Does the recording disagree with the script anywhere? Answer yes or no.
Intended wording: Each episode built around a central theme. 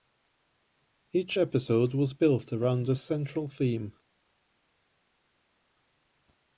yes